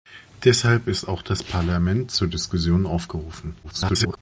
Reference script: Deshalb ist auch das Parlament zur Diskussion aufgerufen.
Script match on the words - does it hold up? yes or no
no